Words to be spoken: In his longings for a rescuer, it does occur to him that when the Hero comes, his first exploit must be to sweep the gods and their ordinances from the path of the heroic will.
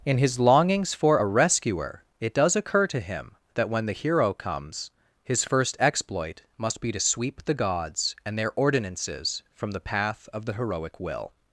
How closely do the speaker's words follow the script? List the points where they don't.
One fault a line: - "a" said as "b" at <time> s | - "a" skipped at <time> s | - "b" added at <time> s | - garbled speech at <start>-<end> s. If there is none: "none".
none